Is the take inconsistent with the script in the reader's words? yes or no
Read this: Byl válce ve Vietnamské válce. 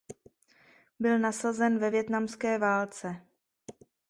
yes